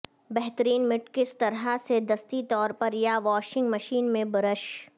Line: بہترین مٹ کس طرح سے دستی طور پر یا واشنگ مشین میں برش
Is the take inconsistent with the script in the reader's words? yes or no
no